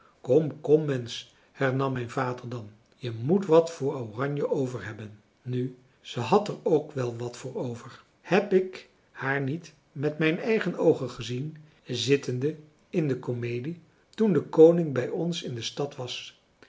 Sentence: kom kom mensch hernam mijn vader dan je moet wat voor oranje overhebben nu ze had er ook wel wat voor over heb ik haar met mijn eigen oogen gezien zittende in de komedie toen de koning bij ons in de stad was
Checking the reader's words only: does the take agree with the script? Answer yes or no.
no